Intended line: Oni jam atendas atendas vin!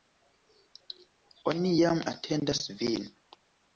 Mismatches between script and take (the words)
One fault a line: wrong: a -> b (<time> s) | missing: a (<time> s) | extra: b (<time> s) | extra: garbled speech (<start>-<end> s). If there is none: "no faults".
missing: atendas (2.6 s)